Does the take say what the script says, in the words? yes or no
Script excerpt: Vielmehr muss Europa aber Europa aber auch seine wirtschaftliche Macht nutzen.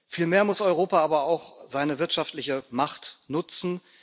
no